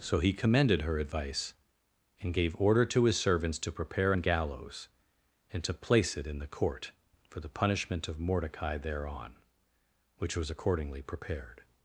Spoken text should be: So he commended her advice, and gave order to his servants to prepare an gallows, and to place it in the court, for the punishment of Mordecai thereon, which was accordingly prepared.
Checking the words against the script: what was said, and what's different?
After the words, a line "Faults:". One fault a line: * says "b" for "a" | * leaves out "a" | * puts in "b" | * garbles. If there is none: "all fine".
So he commended her advice, and gave order to his servants to prepare an gallows, and to place it in the court, for the punishment of Mordecai thereon, which was accordingly prepared.
Faults:
all fine